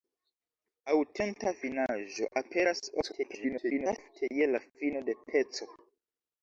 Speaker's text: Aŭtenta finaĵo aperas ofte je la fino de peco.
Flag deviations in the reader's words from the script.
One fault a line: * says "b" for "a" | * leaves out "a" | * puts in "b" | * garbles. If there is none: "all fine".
* garbles